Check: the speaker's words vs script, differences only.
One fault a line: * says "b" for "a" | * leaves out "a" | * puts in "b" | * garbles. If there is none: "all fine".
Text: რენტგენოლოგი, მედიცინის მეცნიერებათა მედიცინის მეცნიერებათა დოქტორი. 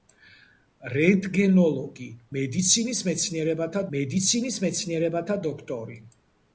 all fine